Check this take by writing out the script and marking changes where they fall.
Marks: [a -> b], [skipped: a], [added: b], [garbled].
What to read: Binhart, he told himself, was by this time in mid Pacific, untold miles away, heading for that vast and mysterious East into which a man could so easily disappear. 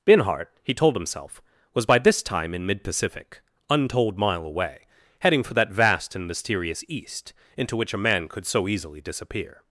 Binhart, he told himself, was by this time in mid Pacific, untold [miles -> mile] away, heading for that vast and mysterious East into which a man could so easily disappear.